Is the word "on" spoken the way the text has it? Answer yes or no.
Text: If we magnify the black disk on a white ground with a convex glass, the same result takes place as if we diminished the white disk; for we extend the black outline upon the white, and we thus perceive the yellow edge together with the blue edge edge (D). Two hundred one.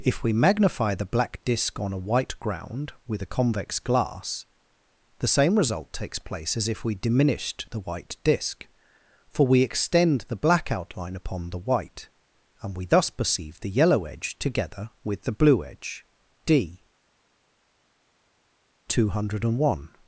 yes